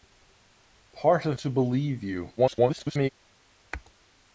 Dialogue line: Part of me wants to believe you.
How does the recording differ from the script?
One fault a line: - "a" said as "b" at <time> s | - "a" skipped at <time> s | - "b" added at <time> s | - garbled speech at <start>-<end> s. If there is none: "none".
- "me wants" skipped at 1.4 s
- garbled speech at 2.4-3.1 s